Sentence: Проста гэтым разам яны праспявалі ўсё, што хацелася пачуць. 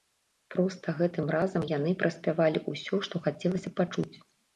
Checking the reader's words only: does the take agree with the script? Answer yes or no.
yes